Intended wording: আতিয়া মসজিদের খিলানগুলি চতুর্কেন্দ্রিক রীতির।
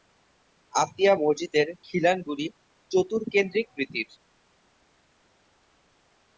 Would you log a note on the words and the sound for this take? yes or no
no